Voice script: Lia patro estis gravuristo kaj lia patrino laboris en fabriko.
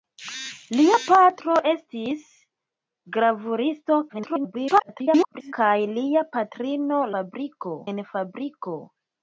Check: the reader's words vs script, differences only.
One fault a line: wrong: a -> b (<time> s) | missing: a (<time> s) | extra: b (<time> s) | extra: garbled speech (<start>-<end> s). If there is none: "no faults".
extra: garbled speech (4.1-5.5 s)
wrong: laboris -> fabriko (7.1 s)